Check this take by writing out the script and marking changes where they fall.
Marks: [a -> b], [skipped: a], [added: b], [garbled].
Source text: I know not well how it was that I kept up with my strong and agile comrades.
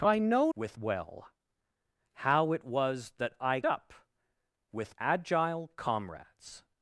I know [not -> with] well how it was that I [skipped: kept] up with [skipped: my strong and] agile comrades.